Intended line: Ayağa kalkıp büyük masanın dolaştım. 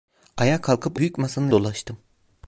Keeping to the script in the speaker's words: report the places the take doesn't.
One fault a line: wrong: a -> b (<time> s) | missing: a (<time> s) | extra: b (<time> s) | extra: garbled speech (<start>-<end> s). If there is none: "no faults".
no faults